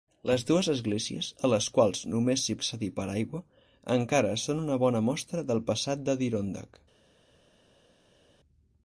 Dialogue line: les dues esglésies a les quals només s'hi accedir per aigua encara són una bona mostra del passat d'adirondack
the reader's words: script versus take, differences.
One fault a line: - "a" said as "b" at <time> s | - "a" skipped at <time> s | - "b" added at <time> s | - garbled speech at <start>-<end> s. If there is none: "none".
none